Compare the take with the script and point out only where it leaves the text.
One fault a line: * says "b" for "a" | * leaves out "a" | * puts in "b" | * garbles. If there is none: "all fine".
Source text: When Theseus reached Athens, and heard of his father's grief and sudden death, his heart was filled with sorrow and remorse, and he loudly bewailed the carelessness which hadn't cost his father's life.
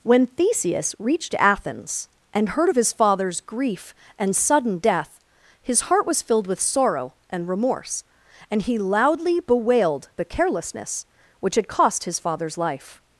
* says "had" for "hadn't"